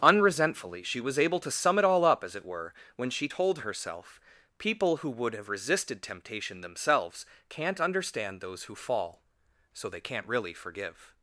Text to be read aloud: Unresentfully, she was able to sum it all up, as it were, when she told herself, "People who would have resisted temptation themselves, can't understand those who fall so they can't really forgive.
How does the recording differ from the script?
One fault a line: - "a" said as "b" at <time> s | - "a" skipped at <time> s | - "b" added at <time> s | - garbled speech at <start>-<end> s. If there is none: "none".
none